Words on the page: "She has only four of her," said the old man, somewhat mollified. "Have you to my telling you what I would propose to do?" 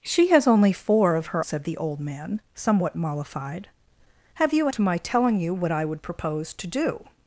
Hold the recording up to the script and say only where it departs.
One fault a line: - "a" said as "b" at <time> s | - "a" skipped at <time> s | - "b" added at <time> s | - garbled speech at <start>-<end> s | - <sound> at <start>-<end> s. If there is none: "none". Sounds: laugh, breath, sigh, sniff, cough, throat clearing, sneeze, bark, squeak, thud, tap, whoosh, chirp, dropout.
none